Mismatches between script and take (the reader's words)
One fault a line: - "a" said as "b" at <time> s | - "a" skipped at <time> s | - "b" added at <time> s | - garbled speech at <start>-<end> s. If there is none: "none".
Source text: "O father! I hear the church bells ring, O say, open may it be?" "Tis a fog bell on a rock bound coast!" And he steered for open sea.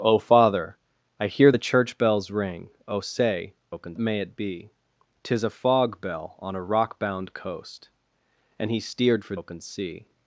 none